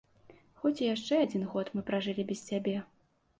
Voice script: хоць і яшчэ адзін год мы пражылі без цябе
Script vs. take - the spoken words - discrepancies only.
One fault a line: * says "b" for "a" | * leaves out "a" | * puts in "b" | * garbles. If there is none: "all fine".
all fine